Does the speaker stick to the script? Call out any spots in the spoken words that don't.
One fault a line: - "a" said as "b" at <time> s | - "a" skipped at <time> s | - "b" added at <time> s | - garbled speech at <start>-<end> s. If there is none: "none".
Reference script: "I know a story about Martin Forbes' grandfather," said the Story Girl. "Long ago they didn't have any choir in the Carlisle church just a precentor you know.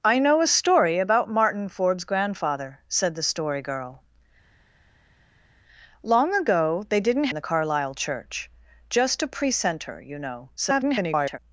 - "have any choir" skipped at 7.3 s
- garbled speech at 10.6-11.4 s